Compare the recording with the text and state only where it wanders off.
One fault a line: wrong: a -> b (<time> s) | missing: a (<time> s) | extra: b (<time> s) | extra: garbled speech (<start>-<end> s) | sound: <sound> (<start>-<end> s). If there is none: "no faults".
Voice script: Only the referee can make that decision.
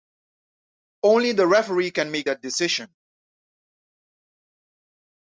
no faults